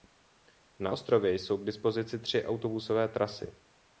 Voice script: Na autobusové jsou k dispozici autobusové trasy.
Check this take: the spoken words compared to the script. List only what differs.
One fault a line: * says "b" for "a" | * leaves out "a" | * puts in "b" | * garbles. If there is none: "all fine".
* says "ostrově" for "autobusové"
* puts in "tři"